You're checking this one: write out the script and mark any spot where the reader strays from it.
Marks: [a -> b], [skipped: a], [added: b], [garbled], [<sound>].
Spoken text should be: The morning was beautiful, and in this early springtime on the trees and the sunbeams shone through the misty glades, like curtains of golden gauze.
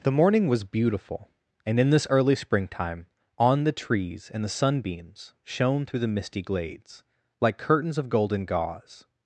The morning was beautiful, and in this early springtime on the trees and the sunbeams shone through the misty glades, like curtains of golden gauze.